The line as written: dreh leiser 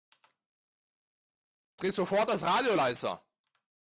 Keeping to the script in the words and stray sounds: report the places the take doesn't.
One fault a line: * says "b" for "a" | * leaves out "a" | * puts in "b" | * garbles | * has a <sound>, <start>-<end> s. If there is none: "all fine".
* puts in "sofort das radio"